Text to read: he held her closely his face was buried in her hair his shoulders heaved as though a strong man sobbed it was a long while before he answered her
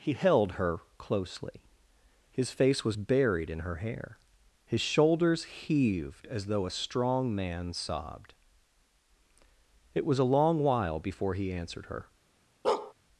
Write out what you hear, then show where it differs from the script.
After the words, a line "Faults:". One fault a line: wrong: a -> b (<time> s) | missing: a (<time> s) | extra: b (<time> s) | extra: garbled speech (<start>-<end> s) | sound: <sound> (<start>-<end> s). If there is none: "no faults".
he held her closely his face was buried in her hair his shoulders heaved as though a strong man sobbed it was a long while before he answered her
Faults:
sound: bark (12.6-12.9 s)